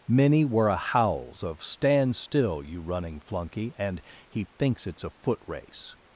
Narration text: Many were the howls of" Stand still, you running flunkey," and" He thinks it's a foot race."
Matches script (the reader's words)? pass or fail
fail